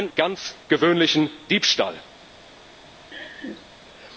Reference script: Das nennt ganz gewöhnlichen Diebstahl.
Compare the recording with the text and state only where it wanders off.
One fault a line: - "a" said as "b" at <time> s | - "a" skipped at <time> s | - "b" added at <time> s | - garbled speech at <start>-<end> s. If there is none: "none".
none